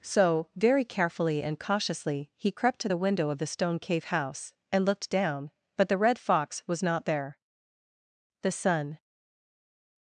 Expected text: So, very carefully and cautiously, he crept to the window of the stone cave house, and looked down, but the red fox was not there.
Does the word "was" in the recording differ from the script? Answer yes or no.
no